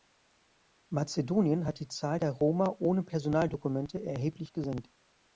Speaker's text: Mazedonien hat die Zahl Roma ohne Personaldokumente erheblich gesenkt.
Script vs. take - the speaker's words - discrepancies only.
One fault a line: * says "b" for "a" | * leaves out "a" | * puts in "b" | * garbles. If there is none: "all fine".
* puts in "der"